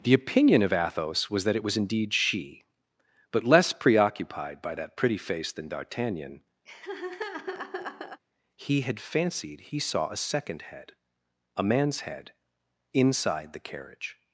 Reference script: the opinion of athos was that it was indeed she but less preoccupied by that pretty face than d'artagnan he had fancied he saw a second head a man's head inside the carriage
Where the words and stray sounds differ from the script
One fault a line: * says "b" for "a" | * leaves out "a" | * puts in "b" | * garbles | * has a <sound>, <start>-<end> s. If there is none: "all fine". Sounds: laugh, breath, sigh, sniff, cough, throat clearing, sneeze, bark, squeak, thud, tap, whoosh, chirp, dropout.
* has a laugh, 6.7-8.2 s